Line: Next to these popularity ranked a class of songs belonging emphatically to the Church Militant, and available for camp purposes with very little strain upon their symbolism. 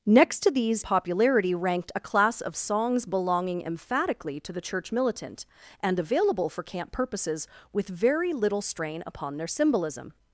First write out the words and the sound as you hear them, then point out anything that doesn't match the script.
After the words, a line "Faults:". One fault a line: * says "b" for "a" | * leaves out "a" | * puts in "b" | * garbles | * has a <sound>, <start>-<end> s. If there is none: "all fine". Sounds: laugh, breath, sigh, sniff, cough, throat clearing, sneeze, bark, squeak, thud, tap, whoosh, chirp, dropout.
Next to these popularity ranked a class of songs belonging emphatically to the Church Militant, and available for camp purposes with very little strain upon their symbolism.
Faults:
all fine